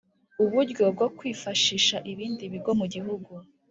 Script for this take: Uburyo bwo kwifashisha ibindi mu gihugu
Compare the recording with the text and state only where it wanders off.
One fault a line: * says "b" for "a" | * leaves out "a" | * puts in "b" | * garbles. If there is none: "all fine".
* puts in "bigo"